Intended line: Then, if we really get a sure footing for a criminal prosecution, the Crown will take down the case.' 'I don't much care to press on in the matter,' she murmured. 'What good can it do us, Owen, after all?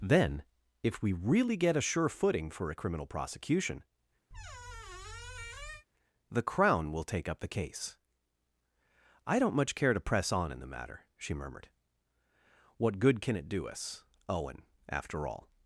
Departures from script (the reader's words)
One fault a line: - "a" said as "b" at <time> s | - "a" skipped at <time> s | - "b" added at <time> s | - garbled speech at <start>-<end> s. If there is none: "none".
- "down" said as "up" at 7.3 s